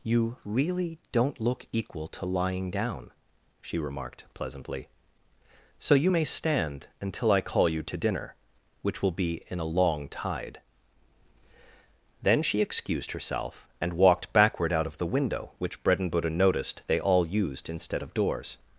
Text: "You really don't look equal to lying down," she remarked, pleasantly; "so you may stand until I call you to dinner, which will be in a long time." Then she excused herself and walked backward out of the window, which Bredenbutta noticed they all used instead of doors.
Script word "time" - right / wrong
wrong